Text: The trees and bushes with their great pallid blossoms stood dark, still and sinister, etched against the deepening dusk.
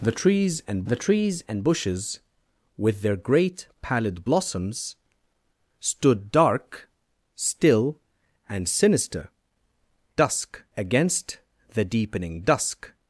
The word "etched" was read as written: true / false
false